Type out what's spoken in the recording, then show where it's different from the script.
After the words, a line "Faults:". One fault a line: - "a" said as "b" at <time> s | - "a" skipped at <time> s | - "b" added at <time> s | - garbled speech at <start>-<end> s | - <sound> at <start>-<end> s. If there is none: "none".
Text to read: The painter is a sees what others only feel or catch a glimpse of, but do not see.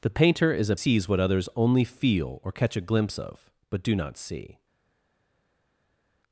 The painter is a sees what others only feel or catch a glimpse of, but do not see.
Faults:
none